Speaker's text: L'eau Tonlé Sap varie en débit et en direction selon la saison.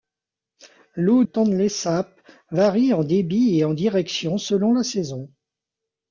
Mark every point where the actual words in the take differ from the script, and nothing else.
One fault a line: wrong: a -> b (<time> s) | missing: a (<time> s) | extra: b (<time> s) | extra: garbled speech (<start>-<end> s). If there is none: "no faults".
no faults